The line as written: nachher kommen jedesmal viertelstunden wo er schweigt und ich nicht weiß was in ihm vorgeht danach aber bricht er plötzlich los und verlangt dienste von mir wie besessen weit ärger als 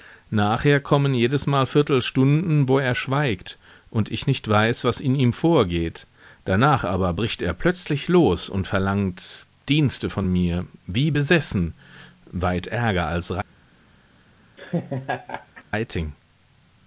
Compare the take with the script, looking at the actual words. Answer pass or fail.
pass